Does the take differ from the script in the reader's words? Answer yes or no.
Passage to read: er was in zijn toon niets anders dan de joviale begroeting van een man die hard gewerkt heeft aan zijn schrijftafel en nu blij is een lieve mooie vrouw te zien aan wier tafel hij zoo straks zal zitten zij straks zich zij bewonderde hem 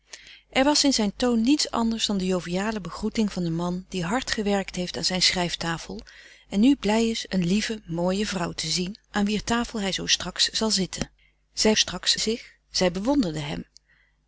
no